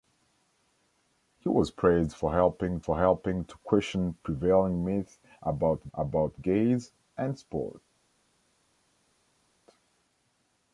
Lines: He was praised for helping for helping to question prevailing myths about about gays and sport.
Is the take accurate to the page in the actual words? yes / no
yes